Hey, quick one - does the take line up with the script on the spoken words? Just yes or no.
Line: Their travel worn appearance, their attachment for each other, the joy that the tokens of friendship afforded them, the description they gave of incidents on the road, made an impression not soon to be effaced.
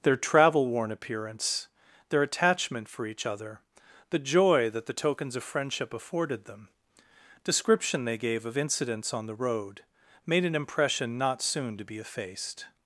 no